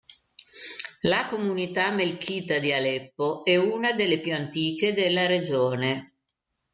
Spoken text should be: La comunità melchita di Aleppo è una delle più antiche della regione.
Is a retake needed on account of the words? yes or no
no